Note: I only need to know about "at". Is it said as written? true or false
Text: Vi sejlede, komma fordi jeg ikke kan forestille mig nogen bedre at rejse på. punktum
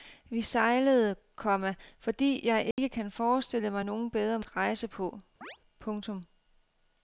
true